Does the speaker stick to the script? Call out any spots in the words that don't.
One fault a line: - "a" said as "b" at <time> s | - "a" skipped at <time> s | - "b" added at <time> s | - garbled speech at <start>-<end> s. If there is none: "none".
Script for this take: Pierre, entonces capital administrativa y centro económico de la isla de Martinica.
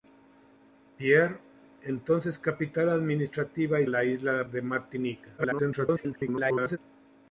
- "centro económico de" skipped at 3.9 s
- garbled speech at 5.4-6.8 s